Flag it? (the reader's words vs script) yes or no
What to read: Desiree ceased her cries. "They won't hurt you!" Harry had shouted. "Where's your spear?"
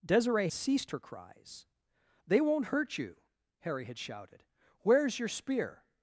no